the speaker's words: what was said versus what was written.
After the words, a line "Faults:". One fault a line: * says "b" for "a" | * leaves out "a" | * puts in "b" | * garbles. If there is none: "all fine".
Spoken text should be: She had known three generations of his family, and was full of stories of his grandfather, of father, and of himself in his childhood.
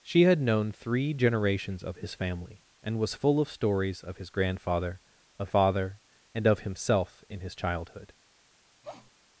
She had known three generations of his family, and was full of stories of his grandfather, of father, and of himself in his childhood.
Faults:
all fine